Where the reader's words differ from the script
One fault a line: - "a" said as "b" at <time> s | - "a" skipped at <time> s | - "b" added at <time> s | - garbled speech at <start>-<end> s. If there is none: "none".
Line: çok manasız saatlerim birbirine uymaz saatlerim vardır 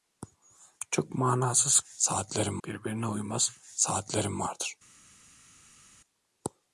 none